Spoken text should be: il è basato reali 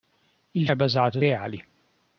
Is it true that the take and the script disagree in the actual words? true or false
false